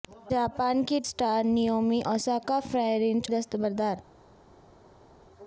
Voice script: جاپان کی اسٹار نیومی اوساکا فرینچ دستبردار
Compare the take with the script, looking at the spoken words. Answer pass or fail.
pass